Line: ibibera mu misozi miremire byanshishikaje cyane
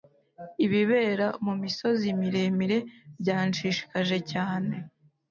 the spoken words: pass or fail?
pass